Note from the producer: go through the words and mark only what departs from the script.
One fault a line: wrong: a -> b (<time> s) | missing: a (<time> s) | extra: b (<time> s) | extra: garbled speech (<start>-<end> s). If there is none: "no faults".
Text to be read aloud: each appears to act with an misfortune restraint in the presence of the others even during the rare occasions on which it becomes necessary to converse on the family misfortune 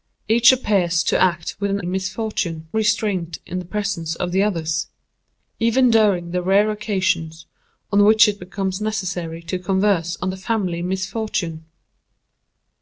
no faults